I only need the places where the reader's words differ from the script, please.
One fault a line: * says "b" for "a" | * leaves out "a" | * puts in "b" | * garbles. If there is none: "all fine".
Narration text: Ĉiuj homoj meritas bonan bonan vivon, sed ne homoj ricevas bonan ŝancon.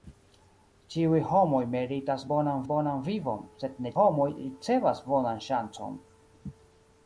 all fine